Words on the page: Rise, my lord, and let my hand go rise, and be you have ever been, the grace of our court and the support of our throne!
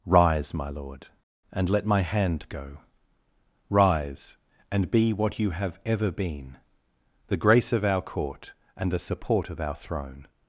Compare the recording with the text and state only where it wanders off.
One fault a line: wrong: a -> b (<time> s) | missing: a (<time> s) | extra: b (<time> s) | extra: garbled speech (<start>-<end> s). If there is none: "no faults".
extra: what (5.1 s)